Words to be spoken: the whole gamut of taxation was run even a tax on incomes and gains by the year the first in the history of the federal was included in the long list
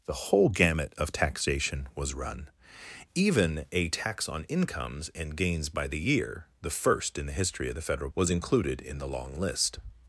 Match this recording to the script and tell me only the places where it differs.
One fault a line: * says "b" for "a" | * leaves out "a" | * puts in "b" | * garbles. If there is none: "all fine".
all fine